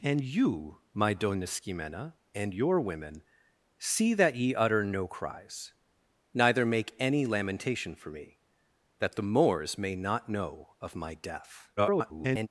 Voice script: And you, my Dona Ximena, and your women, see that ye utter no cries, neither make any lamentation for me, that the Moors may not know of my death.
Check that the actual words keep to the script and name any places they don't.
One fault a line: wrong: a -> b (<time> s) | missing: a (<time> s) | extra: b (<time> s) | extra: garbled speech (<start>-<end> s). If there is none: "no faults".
extra: garbled speech (11.8-12.5 s)